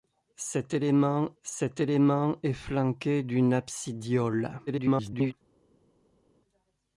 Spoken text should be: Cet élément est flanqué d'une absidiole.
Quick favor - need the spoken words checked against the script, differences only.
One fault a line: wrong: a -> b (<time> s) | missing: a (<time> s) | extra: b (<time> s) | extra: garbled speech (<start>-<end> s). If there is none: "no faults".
extra: cet élément (1.4 s)
extra: garbled speech (4.7-5.3 s)